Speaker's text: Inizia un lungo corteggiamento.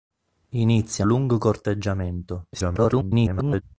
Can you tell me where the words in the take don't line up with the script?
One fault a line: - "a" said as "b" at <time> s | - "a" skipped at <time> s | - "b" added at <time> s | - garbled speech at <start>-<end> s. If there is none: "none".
- "un" skipped at 1.1 s
- garbled speech at 2.5-3.6 s